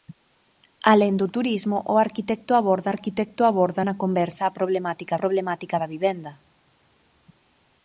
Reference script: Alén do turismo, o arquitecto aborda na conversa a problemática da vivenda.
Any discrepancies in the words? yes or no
yes